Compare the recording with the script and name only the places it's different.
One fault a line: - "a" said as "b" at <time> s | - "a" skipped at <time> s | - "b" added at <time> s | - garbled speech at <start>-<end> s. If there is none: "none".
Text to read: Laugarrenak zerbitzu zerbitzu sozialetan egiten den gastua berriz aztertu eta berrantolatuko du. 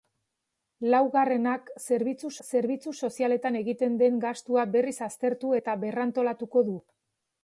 none